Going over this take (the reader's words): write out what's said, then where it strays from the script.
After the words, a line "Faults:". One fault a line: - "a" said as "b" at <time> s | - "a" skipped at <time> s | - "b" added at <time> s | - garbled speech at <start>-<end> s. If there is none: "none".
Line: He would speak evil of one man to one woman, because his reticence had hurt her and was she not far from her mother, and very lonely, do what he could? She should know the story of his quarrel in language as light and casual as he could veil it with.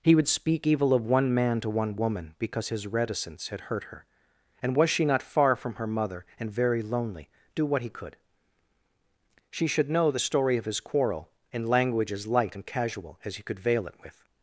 He would speak evil of one man to one woman, because his reticence had hurt her and was she not far from her mother, and very lonely, do what he could? She should know the story of his quarrel in language as light and casual as he could veil it with.
Faults:
none